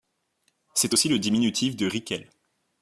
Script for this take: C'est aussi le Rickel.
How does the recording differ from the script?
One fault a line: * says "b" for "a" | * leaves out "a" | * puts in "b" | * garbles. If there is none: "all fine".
* puts in "diminutif de"